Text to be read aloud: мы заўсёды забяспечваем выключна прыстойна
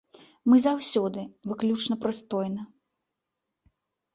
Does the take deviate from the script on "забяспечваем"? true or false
true